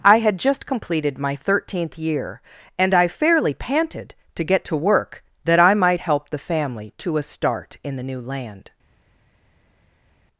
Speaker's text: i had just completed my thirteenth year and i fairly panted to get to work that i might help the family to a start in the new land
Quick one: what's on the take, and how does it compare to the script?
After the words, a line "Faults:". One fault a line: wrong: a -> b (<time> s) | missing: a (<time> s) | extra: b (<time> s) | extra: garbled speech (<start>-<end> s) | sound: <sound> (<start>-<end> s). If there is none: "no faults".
i had just completed my thirteenth year and i fairly panted to get to work that i might help the family to a start in the new land
Faults:
no faults